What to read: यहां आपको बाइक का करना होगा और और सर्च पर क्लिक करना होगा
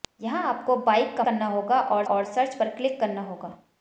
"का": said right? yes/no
yes